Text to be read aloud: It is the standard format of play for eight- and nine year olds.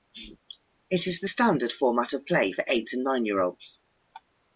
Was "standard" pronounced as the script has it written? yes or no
yes